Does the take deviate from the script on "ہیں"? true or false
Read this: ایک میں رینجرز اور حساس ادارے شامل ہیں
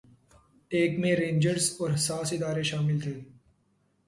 true